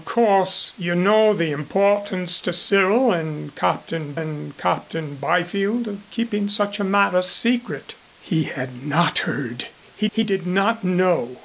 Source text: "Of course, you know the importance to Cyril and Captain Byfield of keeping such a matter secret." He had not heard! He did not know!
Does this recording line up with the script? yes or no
no